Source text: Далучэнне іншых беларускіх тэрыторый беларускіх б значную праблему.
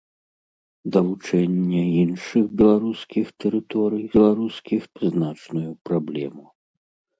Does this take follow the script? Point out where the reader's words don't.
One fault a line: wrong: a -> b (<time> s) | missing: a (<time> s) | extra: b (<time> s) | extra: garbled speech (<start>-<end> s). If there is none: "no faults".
no faults